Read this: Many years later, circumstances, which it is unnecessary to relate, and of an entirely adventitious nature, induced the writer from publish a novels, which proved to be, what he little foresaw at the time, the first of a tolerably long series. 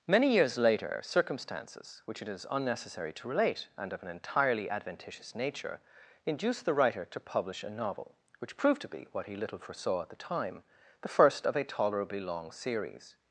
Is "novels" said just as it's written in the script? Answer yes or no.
no